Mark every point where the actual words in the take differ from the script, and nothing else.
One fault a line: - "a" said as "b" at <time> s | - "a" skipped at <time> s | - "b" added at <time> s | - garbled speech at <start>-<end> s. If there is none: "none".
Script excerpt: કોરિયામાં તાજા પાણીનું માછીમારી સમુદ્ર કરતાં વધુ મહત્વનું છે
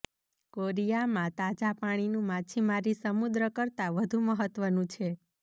none